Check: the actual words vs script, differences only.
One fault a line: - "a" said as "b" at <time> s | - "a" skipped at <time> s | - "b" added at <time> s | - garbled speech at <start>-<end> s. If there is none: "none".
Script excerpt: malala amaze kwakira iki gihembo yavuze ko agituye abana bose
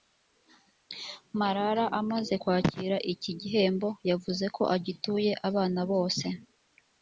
none